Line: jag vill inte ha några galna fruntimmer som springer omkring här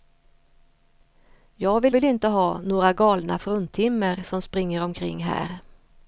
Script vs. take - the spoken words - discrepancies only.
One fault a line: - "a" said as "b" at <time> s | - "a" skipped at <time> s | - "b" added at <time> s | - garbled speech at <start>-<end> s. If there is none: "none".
- "vill" added at 1.9 s